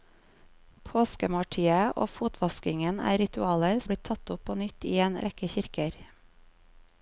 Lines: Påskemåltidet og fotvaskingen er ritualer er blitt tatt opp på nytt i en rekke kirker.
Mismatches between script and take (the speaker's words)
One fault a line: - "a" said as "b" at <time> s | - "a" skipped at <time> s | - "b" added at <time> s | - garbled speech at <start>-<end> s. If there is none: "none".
none